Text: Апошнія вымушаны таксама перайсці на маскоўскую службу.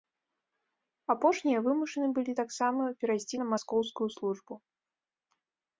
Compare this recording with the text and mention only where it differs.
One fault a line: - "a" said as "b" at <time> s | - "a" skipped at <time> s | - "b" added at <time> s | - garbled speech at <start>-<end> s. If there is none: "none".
- "былі" added at 2.2 s